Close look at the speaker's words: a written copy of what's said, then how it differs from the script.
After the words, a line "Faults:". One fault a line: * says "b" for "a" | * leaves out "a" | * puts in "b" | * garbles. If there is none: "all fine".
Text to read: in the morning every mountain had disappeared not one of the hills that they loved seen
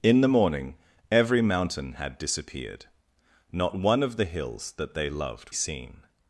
in the morning every mountain had disappeared not one of the hills that they loved seen
Faults:
all fine